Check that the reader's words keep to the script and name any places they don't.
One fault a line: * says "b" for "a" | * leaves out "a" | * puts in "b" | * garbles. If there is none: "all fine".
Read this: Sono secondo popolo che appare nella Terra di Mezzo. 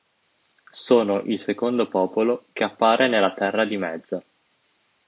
* puts in "il"